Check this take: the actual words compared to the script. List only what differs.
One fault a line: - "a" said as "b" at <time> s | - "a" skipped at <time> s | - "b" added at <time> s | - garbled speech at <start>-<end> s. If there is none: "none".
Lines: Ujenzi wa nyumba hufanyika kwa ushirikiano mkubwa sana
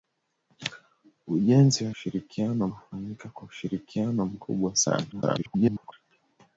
- "nyumba" said as "ushirikiano" at 1.9 s
- garbled speech at 5.1-5.9 s